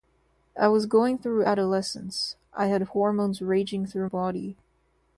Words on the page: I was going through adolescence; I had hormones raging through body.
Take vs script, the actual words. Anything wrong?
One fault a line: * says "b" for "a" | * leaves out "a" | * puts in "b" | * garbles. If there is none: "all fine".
all fine